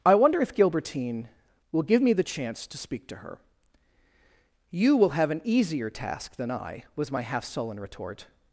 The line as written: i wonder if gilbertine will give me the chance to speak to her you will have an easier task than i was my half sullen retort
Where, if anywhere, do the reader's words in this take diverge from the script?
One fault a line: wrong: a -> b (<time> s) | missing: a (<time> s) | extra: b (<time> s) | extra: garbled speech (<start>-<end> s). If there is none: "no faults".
no faults